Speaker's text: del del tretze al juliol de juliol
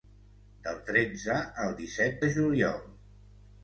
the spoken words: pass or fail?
fail